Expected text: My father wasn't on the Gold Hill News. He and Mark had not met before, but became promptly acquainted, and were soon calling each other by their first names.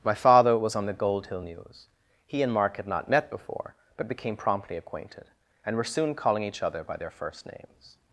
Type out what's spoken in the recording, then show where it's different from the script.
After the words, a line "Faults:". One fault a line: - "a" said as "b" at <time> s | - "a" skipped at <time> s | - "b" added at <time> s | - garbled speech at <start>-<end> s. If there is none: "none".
My father was on the Gold Hill News. He and Mark had not met before, but became promptly acquainted, and were soon calling each other by their first names.
Faults:
- "wasn't" said as "was" at 0.6 s